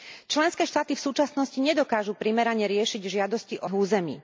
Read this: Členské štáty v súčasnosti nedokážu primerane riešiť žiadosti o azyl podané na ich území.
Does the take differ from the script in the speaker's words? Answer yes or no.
yes